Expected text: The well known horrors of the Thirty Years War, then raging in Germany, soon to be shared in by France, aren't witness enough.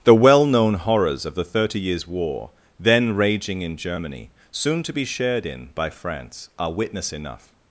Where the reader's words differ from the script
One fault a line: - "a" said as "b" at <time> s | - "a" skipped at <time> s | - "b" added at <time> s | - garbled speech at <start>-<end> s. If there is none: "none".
- "aren't" said as "are" at 6.6 s